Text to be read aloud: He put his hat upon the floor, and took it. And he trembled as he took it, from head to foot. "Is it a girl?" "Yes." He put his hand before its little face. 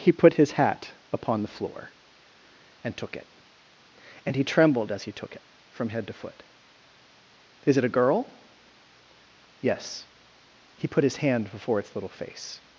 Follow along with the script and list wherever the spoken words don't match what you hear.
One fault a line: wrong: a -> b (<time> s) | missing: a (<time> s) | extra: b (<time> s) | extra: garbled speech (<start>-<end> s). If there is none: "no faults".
no faults